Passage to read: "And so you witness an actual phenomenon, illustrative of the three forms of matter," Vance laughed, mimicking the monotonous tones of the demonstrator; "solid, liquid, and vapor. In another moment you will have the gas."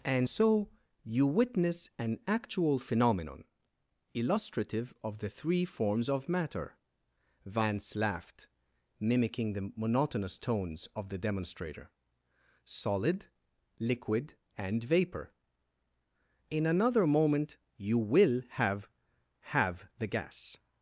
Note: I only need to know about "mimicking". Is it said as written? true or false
true